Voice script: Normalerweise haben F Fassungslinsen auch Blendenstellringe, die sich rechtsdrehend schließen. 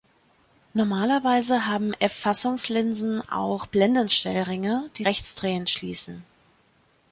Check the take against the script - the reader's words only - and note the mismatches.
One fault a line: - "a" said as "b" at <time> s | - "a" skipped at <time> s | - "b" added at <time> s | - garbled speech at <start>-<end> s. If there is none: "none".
- "sich" skipped at 5.0 s